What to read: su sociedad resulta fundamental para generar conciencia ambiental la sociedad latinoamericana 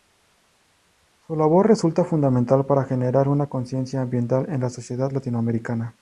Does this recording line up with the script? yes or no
no